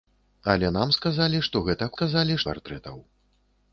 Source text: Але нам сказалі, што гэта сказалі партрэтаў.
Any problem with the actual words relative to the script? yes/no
no